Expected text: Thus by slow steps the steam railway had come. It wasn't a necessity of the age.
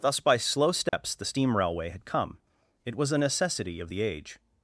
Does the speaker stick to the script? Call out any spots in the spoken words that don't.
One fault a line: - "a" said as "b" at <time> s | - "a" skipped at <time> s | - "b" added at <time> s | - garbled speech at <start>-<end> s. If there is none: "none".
- "wasn't" said as "was" at 3.0 s